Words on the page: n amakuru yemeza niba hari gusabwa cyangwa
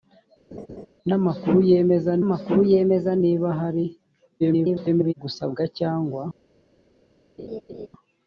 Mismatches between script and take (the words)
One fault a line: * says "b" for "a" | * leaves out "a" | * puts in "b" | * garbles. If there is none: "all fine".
* puts in "amakuru yemeza"
* garbles